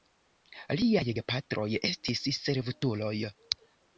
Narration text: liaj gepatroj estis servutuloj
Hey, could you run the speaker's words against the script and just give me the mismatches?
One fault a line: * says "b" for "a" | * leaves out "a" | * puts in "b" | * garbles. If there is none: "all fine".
all fine